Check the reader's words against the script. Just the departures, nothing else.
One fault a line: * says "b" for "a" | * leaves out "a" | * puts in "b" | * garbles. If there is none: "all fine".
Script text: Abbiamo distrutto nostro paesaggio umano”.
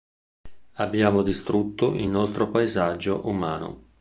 * puts in "il"